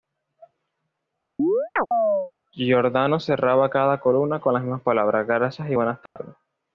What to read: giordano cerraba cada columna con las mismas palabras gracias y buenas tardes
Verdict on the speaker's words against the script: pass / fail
pass